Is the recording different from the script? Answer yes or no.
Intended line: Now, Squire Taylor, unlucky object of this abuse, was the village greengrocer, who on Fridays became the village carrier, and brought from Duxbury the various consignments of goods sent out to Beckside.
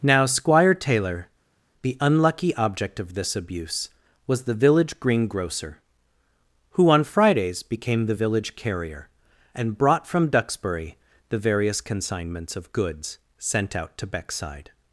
yes